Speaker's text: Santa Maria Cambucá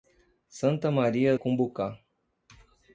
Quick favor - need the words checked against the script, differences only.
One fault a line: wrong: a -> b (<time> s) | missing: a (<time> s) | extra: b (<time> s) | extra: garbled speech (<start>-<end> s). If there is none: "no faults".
no faults